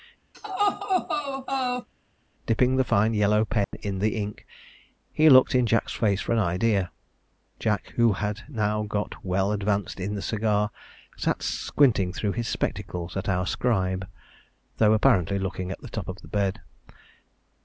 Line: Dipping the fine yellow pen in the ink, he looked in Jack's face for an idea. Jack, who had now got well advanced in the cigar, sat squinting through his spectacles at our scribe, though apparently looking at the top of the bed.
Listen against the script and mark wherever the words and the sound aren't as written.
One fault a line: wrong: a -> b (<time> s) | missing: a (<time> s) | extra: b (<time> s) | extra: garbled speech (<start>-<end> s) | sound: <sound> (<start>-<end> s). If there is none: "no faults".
sound: laugh (0.3-1.9 s)
sound: dropout (3.6-3.7 s)